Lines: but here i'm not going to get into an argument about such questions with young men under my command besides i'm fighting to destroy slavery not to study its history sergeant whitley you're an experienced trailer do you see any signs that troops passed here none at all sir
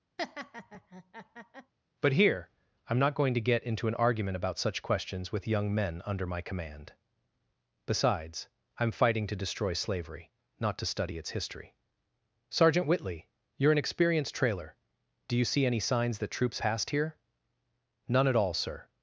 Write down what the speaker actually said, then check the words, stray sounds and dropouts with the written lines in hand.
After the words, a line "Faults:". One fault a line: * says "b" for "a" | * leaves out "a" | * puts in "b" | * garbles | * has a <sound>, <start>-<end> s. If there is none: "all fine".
but here i'm not going to get into an argument about such questions with young men under my command besides i'm fighting to destroy slavery not to study its history sergeant whitley you're an experienced trailer do you see any signs that troops passed here none at all sir
Faults:
* has a laugh, 0.2-1.7 s